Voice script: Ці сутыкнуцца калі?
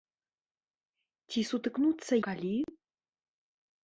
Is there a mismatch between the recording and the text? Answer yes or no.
no